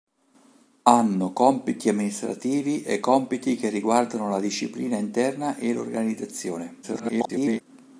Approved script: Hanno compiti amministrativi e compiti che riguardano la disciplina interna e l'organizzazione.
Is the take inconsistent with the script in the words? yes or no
yes